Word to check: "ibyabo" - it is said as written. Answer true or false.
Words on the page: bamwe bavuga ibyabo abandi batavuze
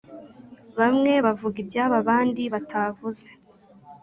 true